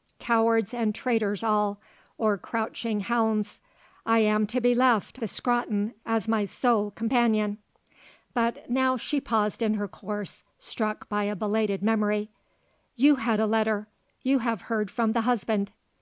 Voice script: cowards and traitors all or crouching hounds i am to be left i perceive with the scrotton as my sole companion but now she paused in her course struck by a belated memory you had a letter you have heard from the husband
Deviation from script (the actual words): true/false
true